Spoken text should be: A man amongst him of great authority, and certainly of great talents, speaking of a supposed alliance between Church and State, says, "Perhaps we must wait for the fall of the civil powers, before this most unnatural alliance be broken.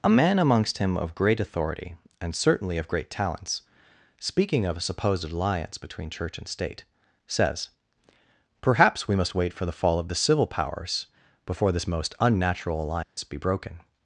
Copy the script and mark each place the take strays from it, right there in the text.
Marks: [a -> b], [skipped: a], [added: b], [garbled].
A man amongst him of great authority, and certainly of great talents, speaking of a supposed alliance between Church and State, says, "Perhaps we must wait for the fall of the civil powers, before this most unnatural alliance be broken.